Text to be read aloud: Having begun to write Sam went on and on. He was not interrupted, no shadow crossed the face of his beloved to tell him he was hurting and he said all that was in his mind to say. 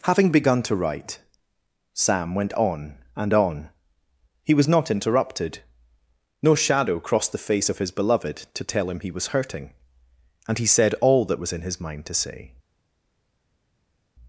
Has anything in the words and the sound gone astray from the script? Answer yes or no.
no